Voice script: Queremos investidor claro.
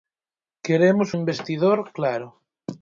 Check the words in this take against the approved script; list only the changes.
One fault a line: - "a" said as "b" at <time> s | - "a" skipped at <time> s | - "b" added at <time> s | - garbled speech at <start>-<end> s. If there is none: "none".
none